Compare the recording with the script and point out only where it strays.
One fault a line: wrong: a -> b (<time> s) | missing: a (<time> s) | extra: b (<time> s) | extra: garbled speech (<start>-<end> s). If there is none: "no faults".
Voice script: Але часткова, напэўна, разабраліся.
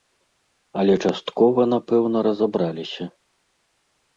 no faults